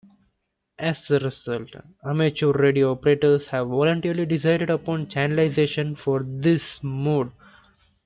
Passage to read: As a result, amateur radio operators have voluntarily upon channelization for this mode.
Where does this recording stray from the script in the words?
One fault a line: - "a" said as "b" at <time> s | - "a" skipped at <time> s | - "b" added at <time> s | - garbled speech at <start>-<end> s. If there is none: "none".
- "decided" added at 4.2 s